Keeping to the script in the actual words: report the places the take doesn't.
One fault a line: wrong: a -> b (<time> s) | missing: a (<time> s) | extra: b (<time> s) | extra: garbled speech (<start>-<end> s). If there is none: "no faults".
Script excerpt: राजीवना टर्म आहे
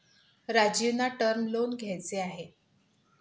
extra: लोन घ्यायचे (1.5 s)